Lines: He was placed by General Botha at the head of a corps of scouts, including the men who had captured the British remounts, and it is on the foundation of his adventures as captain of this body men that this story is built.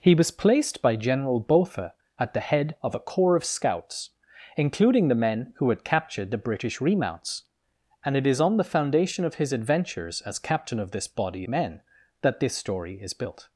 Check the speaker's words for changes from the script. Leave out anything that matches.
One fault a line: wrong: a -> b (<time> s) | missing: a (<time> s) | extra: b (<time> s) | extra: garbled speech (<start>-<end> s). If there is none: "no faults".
no faults